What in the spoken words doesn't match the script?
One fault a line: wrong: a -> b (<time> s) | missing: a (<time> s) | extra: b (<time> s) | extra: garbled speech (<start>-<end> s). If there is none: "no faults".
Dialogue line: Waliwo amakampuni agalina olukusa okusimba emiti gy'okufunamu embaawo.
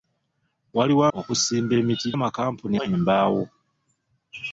missing: amakampuni agalina olukusa (1.0 s)
wrong: gy'okufunamu -> amakampuni (2.1 s)